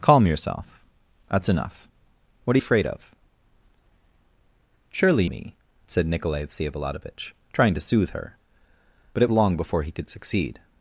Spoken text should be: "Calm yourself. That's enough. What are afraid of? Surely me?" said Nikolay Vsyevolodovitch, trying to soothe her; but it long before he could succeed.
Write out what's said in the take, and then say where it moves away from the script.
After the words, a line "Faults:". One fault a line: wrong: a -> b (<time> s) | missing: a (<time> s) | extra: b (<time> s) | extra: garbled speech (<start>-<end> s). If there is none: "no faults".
"Calm yourself. That's enough. What are afraid of? Surely me?" said Nikolay Vsyevolodovitch, trying to soothe her; but it long before he could succeed.
Faults:
no faults